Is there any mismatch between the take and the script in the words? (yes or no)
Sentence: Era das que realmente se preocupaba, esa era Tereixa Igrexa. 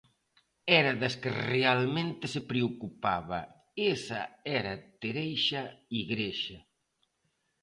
no